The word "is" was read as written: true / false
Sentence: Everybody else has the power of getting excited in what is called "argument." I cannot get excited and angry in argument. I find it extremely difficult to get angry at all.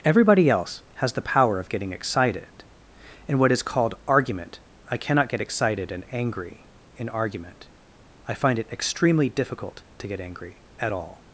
true